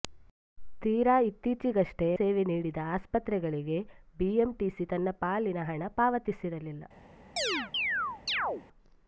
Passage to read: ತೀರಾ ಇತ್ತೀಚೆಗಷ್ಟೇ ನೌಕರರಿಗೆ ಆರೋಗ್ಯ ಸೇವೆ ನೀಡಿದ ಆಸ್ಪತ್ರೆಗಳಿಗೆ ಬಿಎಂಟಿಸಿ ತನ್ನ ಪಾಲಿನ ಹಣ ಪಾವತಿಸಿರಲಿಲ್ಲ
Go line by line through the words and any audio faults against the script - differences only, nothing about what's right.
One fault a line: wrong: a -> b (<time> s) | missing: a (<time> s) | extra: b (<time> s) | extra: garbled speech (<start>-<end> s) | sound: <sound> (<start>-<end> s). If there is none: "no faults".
missing: ನೌಕರರಿಗೆ ಆರೋಗ್ಯ (2.1 s)
sound: chirp (7.4-8.6 s)